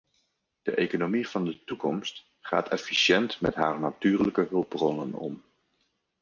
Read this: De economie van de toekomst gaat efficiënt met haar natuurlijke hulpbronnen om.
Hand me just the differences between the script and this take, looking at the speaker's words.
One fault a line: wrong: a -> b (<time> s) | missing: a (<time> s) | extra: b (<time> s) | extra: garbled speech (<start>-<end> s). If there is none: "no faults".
no faults